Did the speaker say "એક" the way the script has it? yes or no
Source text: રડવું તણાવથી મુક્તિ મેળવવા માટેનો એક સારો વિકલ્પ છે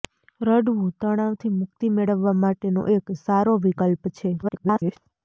yes